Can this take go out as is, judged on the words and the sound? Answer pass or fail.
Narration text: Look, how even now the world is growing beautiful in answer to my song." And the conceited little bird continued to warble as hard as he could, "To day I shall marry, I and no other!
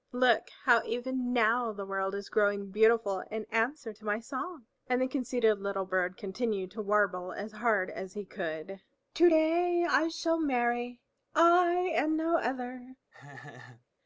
fail